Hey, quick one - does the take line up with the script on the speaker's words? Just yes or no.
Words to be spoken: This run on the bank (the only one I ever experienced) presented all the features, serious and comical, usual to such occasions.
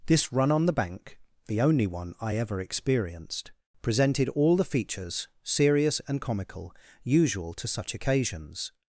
yes